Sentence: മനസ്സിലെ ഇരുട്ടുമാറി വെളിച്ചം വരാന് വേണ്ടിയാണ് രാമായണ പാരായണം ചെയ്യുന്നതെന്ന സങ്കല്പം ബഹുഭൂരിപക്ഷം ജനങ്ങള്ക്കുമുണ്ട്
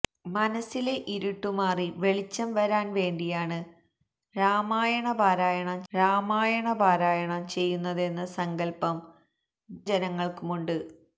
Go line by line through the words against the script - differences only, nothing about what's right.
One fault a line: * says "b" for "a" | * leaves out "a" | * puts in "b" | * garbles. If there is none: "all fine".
* puts in "രാമായണ പാരായണം"
* leaves out "ബഹുഭൂരിപക്ഷം"